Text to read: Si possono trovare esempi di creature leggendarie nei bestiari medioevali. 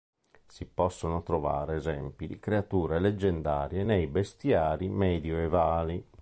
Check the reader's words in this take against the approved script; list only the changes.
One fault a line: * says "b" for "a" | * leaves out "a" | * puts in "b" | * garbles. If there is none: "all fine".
all fine